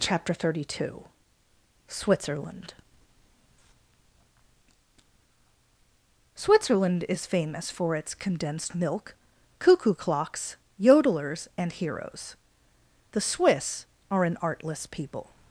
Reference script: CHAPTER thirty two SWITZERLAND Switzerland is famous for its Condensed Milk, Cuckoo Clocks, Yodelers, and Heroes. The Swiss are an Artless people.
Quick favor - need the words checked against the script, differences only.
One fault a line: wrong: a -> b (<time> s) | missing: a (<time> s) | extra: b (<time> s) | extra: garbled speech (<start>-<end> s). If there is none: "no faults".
no faults